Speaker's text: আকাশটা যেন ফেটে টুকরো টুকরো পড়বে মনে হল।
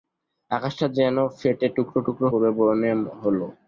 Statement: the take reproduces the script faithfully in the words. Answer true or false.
true